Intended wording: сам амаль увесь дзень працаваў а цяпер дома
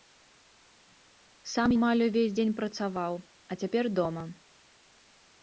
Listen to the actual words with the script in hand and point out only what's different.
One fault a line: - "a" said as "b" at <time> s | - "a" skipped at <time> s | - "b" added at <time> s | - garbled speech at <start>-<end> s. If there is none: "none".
none